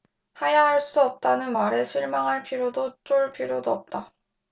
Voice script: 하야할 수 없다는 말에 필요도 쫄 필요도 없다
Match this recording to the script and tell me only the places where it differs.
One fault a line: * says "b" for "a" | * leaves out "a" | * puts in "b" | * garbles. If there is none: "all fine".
* puts in "실망할"